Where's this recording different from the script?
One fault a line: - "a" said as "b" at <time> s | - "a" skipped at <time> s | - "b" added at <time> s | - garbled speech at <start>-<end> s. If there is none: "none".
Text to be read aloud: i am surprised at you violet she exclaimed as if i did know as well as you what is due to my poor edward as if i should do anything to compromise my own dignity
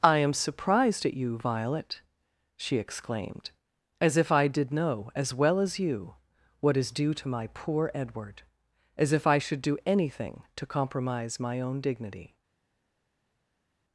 none